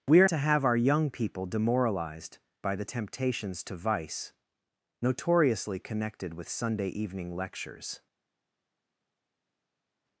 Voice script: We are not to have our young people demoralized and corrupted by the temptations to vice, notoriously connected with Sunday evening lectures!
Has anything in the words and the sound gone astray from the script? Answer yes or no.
yes